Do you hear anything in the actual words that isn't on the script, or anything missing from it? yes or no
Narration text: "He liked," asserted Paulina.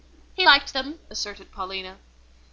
yes